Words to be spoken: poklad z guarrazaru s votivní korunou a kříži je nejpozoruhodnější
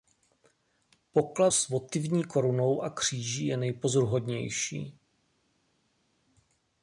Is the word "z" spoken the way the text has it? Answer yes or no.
no